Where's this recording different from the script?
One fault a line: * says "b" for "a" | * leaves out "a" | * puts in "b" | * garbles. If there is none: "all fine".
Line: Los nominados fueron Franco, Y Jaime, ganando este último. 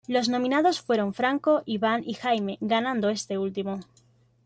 * puts in "Iván"